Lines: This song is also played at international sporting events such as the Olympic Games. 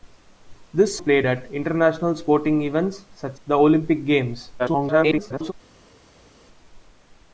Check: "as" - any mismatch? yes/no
yes